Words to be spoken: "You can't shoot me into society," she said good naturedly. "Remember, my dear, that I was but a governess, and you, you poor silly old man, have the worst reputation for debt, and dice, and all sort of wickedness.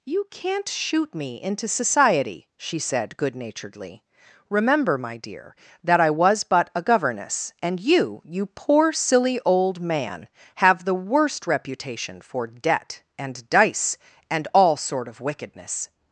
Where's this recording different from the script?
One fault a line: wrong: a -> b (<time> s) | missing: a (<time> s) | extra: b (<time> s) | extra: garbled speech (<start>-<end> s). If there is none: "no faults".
no faults